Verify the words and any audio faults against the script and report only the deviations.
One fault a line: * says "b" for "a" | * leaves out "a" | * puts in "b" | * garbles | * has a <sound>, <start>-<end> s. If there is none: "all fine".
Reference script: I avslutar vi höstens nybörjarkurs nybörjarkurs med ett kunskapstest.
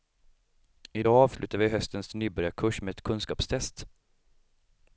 * puts in "dag"
* leaves out "nybörjarkurs"